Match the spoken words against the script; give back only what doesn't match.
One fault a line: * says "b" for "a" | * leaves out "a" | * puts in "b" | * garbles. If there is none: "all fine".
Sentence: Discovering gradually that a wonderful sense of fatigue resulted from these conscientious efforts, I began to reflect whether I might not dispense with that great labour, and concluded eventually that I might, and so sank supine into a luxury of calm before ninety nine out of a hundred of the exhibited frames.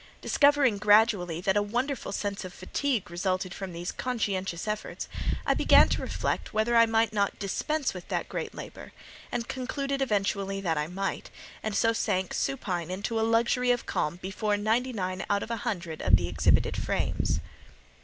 all fine